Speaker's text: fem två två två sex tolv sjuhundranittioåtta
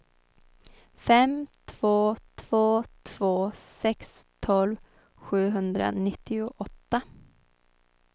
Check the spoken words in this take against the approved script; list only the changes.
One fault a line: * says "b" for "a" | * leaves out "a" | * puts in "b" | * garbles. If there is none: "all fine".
all fine